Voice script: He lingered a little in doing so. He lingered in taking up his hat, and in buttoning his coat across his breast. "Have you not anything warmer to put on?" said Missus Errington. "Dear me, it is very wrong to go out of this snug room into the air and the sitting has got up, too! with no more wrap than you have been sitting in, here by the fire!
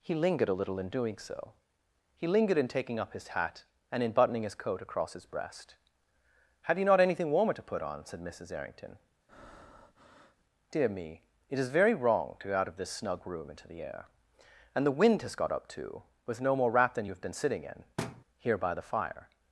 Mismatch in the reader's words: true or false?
true